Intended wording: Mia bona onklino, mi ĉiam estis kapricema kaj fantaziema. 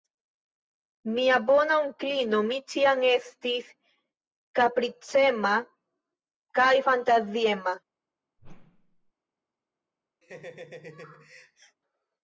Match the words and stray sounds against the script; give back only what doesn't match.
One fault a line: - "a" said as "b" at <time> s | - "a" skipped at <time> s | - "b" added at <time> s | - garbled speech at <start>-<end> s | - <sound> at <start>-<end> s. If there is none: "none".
- whoosh at 8.4-9.1 s
- laugh at 10.2-11.8 s